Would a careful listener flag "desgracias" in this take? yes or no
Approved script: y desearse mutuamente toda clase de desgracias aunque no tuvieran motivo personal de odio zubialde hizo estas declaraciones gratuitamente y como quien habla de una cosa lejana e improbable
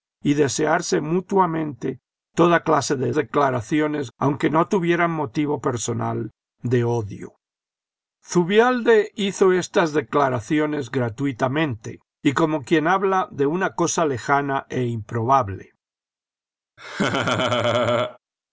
yes